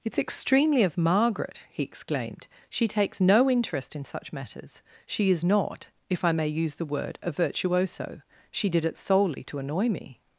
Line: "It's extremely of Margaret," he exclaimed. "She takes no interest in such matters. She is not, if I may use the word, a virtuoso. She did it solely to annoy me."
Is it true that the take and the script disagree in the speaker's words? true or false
false